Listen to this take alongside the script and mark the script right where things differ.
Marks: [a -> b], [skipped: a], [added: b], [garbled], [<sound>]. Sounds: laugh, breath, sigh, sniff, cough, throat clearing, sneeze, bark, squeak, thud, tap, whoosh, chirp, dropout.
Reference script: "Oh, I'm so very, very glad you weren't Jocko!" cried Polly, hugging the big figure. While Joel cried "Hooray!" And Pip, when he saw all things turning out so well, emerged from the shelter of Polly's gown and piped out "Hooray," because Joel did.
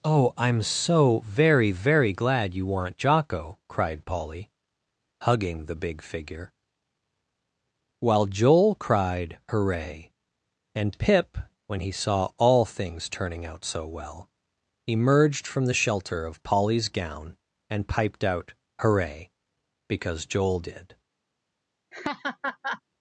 "Oh, I'm so very, very glad you weren't Jocko!" cried Polly, hugging the big figure. While Joel cried "Hooray!" And Pip, when he saw all things turning out so well, emerged from the shelter of Polly's gown and piped out "Hooray," because Joel did. [laugh]